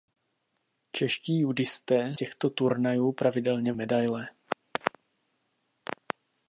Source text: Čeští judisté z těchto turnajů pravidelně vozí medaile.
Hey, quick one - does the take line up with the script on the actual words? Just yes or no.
no